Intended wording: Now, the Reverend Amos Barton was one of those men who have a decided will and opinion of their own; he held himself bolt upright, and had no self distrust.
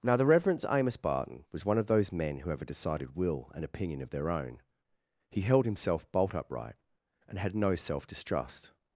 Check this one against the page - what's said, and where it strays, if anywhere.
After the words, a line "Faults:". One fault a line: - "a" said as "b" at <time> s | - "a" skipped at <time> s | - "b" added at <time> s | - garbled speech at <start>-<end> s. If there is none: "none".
Now, the Reverend Amos Barton was one of those men who have a decided will and opinion of their own; he held himself bolt upright, and had no self distrust.
Faults:
none